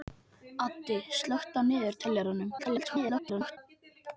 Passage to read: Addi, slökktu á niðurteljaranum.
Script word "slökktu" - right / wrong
right